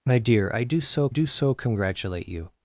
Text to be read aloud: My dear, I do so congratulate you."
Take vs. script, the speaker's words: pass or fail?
fail